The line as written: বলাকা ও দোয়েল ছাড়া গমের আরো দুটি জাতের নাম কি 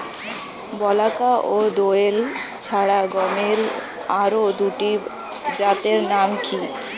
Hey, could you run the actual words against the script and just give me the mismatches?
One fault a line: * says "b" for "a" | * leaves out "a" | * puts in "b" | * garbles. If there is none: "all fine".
all fine